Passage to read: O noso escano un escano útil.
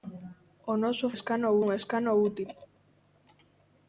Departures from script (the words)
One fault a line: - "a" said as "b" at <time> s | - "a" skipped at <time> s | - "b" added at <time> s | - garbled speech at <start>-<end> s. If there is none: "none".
none